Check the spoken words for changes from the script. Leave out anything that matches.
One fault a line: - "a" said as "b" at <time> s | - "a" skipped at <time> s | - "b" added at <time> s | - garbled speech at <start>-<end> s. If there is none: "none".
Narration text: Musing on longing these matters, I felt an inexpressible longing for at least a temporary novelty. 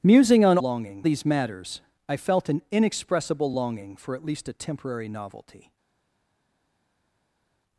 none